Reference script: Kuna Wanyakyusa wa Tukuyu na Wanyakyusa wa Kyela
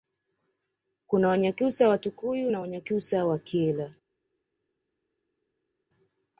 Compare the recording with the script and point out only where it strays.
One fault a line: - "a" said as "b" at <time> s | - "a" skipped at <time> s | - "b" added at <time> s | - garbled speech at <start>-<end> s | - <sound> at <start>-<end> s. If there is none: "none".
none